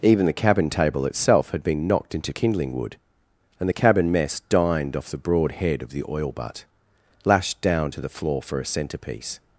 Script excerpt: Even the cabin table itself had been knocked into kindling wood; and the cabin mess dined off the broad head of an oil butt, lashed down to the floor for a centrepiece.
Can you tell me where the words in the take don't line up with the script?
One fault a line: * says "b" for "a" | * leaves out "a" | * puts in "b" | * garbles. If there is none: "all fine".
* says "the" for "an"